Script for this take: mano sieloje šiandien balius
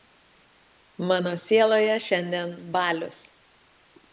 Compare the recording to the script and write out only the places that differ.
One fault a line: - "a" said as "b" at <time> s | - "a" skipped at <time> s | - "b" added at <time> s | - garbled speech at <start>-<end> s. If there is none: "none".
none